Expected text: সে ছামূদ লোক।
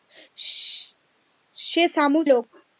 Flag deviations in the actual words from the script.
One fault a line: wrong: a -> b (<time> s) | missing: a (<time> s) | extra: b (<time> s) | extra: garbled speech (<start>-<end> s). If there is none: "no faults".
no faults